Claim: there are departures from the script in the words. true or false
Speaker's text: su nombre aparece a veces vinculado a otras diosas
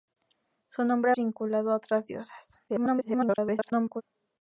true